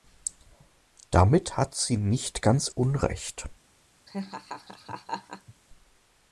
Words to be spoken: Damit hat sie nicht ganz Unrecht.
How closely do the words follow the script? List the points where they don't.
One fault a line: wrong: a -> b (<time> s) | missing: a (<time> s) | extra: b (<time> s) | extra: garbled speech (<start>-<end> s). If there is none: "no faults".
no faults